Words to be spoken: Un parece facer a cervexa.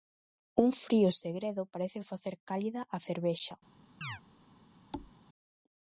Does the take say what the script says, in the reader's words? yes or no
no